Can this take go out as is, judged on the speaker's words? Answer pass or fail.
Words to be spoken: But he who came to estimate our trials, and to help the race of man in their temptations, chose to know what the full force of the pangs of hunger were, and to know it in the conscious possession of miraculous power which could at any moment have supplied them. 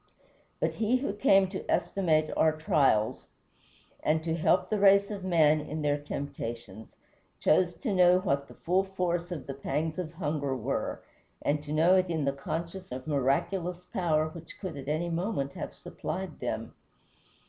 fail